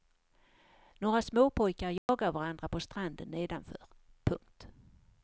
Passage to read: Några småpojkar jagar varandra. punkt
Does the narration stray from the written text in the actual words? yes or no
yes